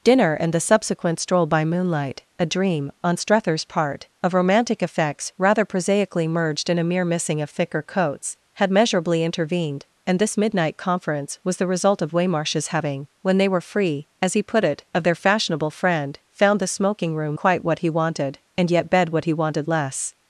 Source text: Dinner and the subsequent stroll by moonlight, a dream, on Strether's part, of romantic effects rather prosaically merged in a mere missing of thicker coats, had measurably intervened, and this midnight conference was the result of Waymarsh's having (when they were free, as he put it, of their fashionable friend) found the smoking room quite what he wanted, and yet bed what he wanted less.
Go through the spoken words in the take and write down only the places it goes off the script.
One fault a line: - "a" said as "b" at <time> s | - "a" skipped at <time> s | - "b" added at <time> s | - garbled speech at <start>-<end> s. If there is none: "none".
none